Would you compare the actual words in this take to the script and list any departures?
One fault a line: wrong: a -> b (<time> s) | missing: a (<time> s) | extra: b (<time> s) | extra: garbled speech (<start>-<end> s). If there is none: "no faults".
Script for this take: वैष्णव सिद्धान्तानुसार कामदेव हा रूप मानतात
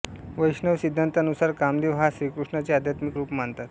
extra: श्रीकृष्णाचे आध्यात्मिक (2.1 s)